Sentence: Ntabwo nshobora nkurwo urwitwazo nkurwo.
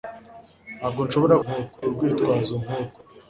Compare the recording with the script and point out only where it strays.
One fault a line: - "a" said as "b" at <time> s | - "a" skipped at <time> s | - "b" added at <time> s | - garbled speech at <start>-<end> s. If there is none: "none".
none